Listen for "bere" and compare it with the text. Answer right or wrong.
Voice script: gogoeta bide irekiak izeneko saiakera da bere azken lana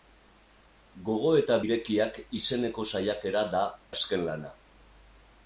wrong